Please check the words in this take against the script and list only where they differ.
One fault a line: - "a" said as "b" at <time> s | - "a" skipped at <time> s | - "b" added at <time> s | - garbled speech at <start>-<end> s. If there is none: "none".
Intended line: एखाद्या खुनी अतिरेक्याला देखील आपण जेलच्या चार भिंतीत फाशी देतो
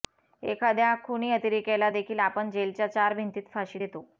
none